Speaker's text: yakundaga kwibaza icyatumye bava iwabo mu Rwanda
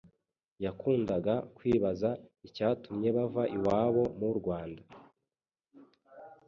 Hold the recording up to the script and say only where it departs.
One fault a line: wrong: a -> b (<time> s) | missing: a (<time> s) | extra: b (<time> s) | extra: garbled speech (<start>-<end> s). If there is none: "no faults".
no faults